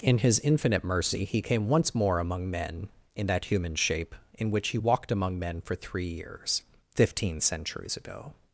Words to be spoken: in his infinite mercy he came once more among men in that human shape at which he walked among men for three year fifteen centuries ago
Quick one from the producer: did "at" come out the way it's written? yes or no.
no